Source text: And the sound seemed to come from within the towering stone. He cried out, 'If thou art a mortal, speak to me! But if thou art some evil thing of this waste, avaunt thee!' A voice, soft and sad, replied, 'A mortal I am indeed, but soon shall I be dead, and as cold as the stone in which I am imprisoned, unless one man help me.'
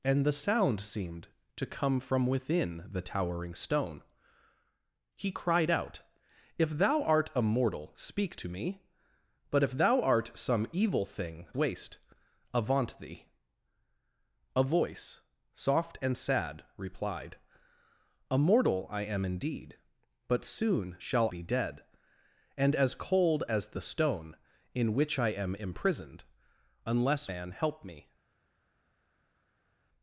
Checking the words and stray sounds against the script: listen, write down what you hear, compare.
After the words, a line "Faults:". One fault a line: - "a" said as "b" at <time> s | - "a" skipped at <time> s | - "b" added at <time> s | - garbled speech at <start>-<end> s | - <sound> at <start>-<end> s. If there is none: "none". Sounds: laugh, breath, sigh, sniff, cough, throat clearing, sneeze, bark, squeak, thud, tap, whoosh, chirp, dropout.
And the sound seemed to come from within the towering stone. He cried out, 'If thou art a mortal, speak to me! But if thou art some evil thing waste, avaunt thee!' A voice, soft and sad, replied, 'A mortal I am indeed, but soon shall be dead, and as cold as the stone in which I am imprisoned, unless man help me.'
Faults:
- "of this" skipped at 11.5 s
- "I" skipped at 21.3 s
- "one" skipped at 27.3 s